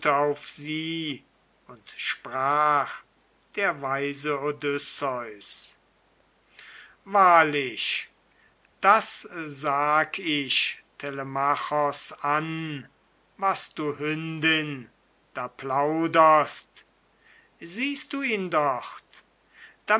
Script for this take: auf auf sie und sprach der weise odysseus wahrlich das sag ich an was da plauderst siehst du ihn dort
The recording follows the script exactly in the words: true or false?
false